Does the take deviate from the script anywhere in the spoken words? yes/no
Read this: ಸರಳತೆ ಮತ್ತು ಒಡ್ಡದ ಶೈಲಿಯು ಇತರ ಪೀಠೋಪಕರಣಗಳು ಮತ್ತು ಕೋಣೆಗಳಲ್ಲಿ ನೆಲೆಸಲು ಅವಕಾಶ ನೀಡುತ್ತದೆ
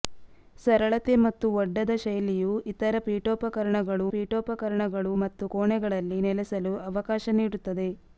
yes